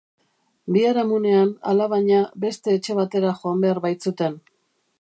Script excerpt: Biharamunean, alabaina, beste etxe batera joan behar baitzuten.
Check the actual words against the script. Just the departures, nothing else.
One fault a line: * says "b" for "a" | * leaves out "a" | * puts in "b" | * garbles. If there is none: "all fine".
all fine